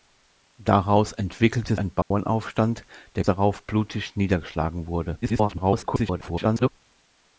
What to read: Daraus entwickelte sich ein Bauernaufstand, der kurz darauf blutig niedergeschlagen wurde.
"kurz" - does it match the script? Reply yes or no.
no